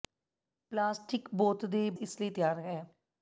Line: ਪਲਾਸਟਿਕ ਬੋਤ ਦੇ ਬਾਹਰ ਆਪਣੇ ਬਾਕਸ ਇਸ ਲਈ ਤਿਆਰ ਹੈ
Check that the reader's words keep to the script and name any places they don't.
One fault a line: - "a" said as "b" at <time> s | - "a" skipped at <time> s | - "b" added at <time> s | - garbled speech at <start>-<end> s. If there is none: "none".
- "ਬਾਹਰ ਆਪਣੇ ਬਾਕਸ" skipped at 1.9 s